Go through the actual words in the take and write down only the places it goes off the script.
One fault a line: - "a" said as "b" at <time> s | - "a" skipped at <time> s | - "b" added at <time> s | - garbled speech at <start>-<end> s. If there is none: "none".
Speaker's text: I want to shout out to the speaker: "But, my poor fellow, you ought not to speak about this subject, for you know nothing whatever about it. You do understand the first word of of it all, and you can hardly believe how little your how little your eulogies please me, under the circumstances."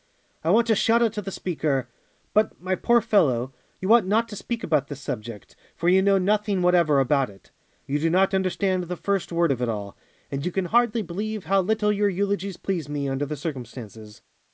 - "not" added at 8.1 s
- "of" skipped at 9.6 s
- "how little your" skipped at 12.1 s